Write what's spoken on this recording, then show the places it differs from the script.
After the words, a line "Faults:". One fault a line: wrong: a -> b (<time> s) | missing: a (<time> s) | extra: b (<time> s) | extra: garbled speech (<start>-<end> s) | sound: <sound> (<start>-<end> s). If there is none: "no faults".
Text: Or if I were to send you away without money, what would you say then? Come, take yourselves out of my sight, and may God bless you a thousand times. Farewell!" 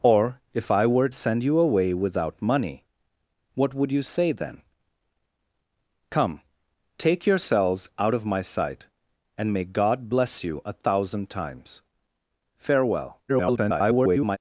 Or if I were send you away without money, what would you say then? Come, take yourselves out of my sight, and may God bless you a thousand times. Farewell!" [garbled]
Faults:
missing: to (1.1 s)
extra: garbled speech (13.3-14.4 s)